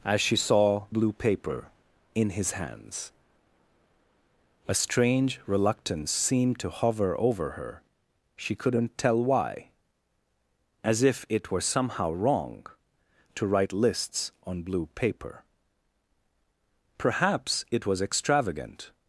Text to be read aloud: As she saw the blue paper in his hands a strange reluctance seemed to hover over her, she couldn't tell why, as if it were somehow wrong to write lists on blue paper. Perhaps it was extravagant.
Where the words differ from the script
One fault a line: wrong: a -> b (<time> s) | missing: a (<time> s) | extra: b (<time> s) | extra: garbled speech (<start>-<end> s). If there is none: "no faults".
missing: the (0.8 s)